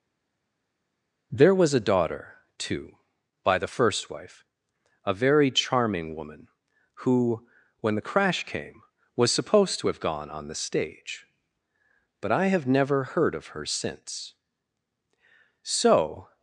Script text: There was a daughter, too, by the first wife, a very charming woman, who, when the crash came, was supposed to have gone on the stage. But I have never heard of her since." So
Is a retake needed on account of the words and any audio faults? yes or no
no